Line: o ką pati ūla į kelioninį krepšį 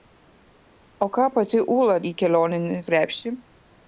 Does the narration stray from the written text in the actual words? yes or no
no